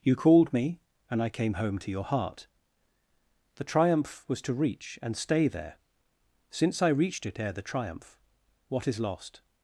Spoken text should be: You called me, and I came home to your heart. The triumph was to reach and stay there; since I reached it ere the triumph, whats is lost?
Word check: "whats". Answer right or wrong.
wrong